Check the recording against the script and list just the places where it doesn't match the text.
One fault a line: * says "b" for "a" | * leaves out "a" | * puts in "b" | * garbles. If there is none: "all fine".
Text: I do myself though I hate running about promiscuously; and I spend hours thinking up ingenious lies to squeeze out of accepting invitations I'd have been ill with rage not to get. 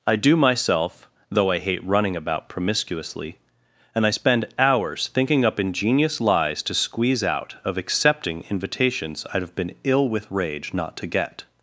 all fine